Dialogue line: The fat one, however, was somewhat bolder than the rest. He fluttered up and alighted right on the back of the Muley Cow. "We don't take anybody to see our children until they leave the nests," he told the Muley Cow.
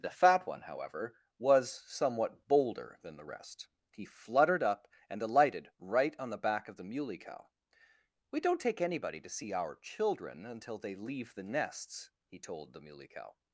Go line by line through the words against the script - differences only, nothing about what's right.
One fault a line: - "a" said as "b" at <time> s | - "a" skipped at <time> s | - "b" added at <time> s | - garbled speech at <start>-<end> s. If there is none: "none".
none